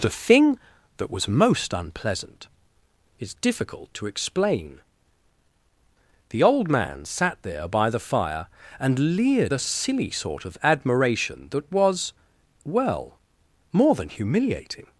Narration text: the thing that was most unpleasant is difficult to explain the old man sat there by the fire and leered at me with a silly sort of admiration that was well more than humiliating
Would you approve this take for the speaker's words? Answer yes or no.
no